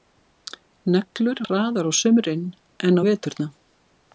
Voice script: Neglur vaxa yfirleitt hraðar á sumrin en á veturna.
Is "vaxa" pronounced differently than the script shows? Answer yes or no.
yes